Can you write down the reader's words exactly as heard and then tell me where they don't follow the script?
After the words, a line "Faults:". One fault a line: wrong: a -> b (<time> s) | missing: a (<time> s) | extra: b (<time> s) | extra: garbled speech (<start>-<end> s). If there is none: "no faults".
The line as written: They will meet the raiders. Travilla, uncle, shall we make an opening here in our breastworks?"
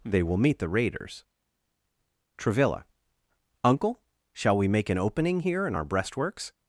They will meet the raiders. Travilla, uncle, shall we make an opening here in our breastworks?"
Faults:
no faults